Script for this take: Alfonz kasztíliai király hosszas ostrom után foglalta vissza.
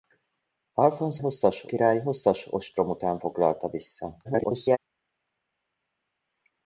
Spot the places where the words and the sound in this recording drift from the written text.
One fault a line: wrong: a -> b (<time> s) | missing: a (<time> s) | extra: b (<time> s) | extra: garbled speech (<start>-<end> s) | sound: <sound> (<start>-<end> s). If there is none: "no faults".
wrong: kasztíliai -> hosszas (1.2 s)
extra: garbled speech (4.2-4.8 s)